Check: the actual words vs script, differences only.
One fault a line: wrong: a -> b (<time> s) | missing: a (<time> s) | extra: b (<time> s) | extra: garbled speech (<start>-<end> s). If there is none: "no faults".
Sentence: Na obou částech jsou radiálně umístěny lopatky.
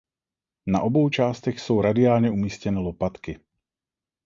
no faults